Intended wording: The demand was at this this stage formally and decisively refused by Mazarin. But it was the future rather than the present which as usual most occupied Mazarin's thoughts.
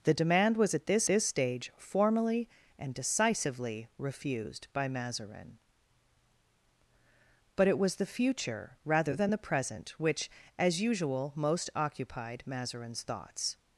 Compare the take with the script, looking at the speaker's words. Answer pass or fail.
pass